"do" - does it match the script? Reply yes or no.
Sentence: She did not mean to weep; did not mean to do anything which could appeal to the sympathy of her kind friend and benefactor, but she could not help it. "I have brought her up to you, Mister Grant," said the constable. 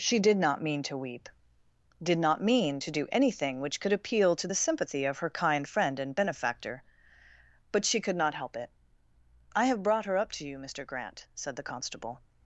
yes